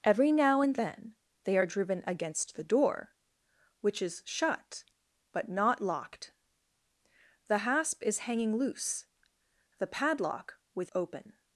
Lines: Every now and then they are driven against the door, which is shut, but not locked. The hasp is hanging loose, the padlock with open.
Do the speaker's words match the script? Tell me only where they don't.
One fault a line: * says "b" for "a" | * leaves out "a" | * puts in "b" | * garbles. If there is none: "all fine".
all fine